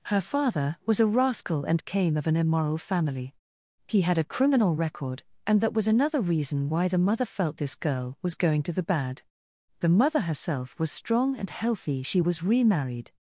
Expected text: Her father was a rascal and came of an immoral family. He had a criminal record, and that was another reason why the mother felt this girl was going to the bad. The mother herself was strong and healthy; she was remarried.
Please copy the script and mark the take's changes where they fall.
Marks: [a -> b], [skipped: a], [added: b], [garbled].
Her father was a rascal and came of an immoral family. He had a criminal record, and that was another reason why the mother felt this girl was going to the bad. The mother herself was strong and healthy; she was remarried.